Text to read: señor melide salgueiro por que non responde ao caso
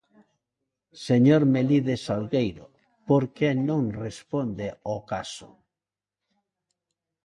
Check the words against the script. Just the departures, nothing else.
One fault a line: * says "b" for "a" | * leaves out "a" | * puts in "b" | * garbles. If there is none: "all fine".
all fine